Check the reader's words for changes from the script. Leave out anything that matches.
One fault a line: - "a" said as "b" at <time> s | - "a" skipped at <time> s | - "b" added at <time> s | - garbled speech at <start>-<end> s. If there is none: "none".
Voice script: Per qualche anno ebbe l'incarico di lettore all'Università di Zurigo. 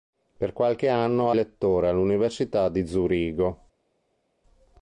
- "ebbe l'incarico di" skipped at 1.4 s